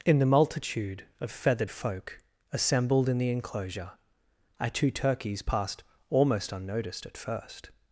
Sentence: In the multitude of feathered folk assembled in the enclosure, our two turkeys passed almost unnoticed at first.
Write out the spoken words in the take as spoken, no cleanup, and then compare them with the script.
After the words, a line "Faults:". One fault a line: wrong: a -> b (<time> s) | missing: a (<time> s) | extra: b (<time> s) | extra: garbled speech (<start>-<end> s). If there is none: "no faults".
In the multitude of feathered folk assembled in the enclosure, our two turkeys passed almost unnoticed at first.
Faults:
no faults